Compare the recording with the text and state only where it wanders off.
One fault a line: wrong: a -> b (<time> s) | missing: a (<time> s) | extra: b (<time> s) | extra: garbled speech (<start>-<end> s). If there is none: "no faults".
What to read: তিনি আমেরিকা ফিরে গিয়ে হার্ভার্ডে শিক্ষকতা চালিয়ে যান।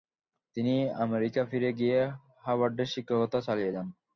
no faults